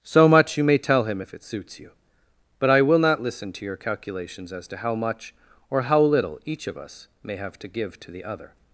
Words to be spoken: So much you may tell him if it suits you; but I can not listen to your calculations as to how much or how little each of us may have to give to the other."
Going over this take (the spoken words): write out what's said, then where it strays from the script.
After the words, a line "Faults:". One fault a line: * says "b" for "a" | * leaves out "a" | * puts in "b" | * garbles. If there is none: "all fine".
So much you may tell him if it suits you; but I will not listen to your calculations as to how much or how little each of us may have to give to the other."
Faults:
* says "will" for "can"